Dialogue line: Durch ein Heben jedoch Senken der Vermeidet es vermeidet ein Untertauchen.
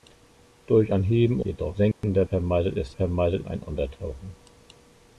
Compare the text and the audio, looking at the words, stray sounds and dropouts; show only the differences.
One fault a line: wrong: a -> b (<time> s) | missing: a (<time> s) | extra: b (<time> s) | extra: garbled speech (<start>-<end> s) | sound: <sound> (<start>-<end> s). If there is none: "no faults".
sound: dropout (1.9-2.0 s)